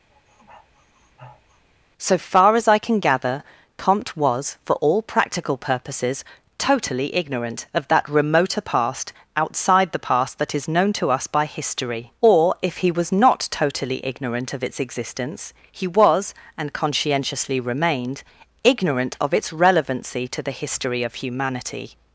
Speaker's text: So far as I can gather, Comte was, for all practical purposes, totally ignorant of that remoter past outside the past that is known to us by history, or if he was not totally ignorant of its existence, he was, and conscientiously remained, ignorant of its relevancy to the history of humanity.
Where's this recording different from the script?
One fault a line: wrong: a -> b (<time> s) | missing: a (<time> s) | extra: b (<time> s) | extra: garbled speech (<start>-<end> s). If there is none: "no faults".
no faults